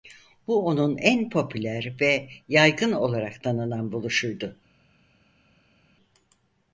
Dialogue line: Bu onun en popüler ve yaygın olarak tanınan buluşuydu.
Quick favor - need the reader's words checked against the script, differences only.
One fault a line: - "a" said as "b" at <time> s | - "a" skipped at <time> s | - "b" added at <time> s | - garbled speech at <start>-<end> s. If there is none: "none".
none